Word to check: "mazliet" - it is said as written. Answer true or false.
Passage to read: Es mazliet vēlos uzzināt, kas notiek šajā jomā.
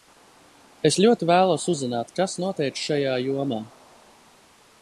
false